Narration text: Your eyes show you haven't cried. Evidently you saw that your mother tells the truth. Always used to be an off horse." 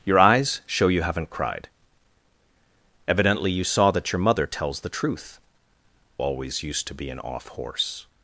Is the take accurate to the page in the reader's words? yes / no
yes